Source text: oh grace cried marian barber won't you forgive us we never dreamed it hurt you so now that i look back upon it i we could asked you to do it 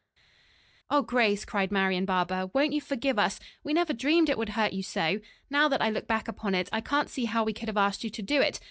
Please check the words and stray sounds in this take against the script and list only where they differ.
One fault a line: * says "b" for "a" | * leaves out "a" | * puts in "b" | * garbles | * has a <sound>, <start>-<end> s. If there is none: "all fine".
* puts in "would"
* puts in "can't see how"
* puts in "have"